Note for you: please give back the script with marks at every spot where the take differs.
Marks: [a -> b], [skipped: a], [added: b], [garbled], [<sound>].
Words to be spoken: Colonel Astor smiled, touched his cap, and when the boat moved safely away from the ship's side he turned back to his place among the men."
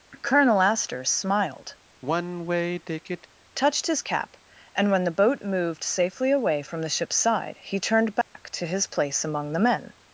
Colonel Astor smiled, [sigh] touched his cap, and when the boat moved safely away from the ship's side he turned back [dropout] to his place among the men."